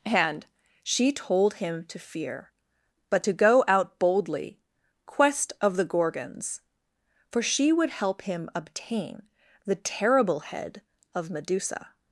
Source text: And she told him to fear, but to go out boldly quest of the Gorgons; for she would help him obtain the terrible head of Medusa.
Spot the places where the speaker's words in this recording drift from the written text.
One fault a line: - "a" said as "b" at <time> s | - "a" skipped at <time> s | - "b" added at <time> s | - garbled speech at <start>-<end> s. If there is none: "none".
none